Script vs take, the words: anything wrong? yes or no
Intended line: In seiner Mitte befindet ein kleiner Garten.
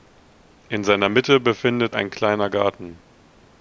no